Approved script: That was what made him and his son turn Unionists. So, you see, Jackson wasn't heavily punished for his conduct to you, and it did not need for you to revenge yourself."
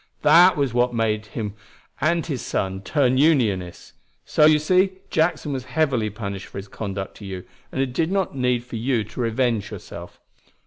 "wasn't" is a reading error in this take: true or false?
true